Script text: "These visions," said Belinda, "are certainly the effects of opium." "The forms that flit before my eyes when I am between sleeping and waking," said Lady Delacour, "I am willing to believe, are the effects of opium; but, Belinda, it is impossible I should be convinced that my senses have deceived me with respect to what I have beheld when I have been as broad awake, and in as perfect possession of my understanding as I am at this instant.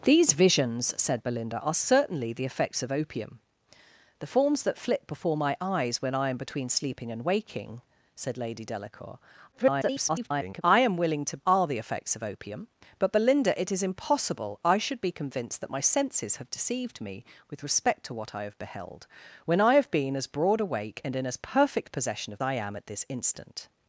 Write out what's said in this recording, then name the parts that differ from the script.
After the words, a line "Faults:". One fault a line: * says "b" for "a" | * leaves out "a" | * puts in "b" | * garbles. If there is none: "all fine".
"These visions," said Belinda, "are certainly the effects of opium." "The forms that flit before my eyes when I am between sleeping and waking," said Lady Delacour, [garbled] "I am willing to are the effects of opium; but, Belinda, it is impossible I should be convinced that my senses have deceived me with respect to what I have beheld when I have been as broad awake, and in as perfect possession of I am at this instant.
Faults:
* garbles
* leaves out "believe"
* leaves out "my understanding as"